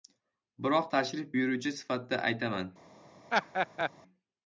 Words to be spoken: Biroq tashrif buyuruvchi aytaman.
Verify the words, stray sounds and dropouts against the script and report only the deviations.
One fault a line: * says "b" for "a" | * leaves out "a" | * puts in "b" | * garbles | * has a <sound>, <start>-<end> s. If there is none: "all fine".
* puts in "sifatida"
* has a laugh, 3.3-3.9 s